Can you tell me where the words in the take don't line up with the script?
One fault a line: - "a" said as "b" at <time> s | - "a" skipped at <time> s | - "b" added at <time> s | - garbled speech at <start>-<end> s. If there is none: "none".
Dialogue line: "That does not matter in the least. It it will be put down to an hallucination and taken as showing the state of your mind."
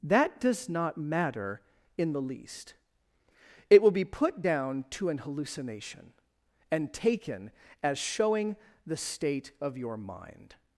- "it" skipped at 3.8 s